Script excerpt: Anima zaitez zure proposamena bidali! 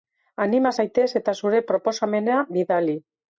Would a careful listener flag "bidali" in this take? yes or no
no